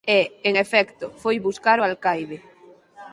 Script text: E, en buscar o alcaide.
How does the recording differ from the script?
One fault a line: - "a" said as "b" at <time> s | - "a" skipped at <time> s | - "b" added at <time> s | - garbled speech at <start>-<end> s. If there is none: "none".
- "efecto foi" added at 0.5 s